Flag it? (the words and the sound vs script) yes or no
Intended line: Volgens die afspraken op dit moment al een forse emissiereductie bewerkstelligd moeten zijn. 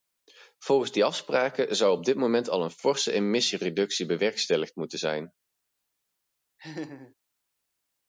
yes